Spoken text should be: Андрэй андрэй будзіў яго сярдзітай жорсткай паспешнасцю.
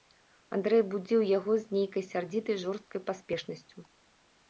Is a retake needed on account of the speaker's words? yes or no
yes